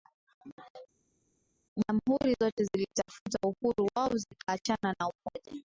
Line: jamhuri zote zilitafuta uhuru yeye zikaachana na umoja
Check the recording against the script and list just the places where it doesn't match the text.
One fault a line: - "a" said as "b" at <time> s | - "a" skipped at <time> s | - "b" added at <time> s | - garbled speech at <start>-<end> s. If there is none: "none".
- "yeye" said as "wao" at 4.0 s